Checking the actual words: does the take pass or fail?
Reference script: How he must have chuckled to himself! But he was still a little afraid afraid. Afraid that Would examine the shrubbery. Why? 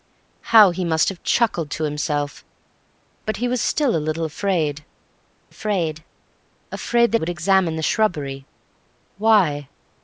pass